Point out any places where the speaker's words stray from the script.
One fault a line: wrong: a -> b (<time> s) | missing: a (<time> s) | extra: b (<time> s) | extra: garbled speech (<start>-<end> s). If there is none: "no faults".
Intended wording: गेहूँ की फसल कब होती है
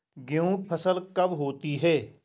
missing: की (0.6 s)